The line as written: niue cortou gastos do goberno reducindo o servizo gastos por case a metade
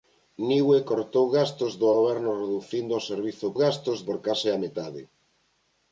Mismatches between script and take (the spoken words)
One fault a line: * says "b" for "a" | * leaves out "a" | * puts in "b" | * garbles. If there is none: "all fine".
all fine